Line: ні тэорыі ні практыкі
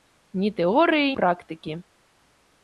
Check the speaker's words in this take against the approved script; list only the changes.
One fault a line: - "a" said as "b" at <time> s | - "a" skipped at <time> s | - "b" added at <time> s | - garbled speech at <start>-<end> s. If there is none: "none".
- "ні" skipped at 1.1 s